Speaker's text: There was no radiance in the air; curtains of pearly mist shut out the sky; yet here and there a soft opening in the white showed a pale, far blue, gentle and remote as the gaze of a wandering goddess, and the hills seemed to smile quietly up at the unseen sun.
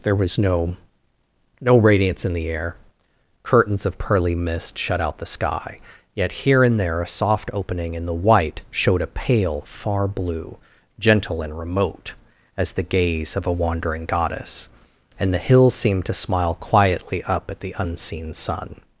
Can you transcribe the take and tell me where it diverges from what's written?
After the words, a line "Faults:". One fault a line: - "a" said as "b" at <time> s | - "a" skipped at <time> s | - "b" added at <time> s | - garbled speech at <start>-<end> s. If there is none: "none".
There was no no radiance in the air; curtains of pearly mist shut out the sky; yet here and there a soft opening in the white showed a pale, far blue, gentle and remote as the gaze of a wandering goddess, and the hills seemed to smile quietly up at the unseen sun.
Faults:
- "no" added at 1.6 s